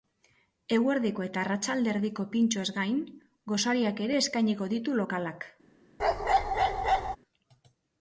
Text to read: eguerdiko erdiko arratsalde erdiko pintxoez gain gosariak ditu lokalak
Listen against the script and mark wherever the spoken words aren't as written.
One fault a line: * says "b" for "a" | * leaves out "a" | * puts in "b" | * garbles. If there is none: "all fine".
* says "eta" for "erdiko"
* puts in "ere eskainiko"